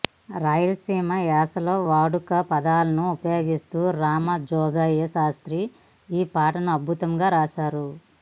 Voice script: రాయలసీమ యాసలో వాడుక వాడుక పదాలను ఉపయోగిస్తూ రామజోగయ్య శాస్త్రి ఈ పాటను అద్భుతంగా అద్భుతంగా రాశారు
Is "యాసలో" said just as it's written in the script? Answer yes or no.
yes